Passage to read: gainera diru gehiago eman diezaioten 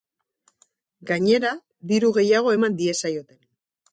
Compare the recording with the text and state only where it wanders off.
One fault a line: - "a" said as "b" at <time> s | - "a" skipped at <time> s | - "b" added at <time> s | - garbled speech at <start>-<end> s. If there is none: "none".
none